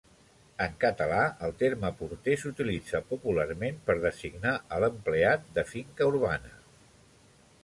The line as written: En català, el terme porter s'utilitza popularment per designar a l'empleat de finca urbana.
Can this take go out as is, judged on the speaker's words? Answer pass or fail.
pass